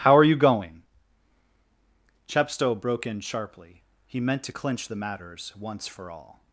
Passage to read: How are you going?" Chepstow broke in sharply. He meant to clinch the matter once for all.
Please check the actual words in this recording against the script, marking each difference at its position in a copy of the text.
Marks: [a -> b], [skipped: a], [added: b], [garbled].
How are you going?" Chepstow broke in sharply. He meant to clinch the [matter -> matters] once for all.